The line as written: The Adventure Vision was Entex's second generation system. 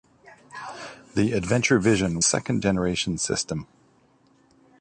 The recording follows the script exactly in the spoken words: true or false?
false